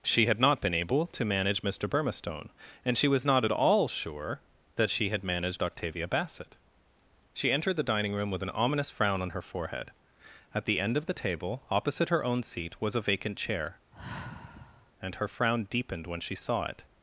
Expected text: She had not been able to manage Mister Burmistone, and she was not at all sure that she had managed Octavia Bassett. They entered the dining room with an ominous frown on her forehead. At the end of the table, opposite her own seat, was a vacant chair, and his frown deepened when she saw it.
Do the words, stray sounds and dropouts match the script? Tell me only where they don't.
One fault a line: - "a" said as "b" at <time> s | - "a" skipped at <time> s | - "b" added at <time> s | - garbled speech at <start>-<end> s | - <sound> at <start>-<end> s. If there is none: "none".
- "They" said as "She" at 7.3 s
- sigh at 13.9-14.9 s
- "his" said as "her" at 15.1 s